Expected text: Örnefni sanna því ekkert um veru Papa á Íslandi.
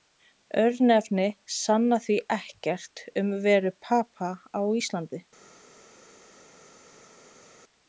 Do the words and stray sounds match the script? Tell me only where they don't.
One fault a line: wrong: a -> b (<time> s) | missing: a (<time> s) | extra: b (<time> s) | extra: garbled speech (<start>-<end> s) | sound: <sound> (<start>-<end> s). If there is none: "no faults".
no faults